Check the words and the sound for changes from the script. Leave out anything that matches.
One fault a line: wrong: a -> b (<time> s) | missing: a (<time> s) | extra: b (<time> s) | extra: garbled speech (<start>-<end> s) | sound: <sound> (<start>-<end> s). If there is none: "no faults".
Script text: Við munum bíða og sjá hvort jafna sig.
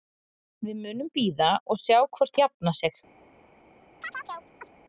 sound: chirp (4.0-4.7 s)